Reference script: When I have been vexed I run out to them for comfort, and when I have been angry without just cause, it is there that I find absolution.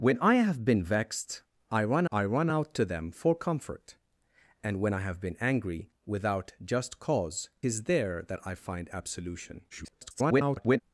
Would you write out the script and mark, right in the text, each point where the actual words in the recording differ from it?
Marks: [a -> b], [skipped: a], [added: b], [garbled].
When I have been vexed I run [added: I run] out to them for comfort, and when I have been angry without just cause, [skipped: it] is there that I find absolution. [garbled]